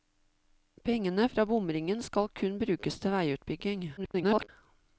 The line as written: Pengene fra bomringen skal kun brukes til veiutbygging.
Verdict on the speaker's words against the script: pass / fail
fail